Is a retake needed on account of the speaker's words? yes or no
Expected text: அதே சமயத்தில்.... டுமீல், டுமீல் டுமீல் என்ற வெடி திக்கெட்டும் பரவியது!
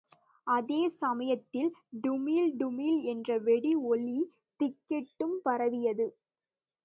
yes